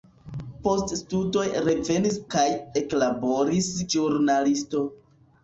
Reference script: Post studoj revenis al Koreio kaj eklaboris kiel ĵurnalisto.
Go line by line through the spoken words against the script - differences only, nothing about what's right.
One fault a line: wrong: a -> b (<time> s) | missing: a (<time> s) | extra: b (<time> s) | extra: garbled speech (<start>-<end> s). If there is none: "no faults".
missing: al Koreio (2.2 s)
missing: kiel (3.7 s)